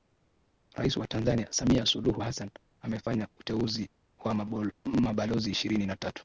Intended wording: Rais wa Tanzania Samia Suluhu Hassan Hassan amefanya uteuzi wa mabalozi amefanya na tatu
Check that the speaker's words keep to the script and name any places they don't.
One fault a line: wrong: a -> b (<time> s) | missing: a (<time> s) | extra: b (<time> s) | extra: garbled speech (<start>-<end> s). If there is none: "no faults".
missing: Hassan (2.5 s)
wrong: amefanya -> ishirini (5.5 s)